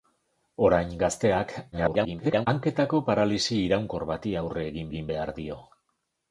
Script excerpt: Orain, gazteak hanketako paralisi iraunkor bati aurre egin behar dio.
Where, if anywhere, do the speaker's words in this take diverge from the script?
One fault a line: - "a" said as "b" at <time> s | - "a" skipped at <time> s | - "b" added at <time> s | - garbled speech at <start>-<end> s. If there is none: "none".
- garbled speech at 1.7-2.5 s
- "egin" added at 4.9 s